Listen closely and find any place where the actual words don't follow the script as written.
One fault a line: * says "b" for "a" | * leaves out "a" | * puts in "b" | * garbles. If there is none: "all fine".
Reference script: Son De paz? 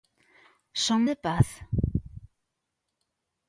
all fine